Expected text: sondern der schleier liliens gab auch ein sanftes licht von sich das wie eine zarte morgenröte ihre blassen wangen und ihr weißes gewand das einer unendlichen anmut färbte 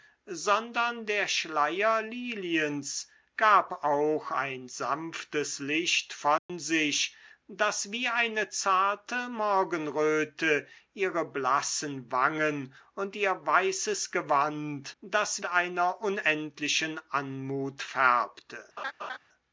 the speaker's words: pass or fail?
pass